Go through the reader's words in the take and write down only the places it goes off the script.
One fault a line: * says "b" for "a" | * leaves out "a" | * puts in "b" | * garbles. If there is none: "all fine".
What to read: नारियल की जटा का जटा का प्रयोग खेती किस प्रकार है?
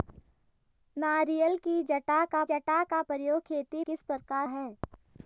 all fine